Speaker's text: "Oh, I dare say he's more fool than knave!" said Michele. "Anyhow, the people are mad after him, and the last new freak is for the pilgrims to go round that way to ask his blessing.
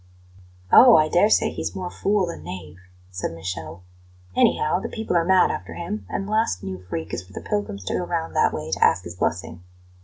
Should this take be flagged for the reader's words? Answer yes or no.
no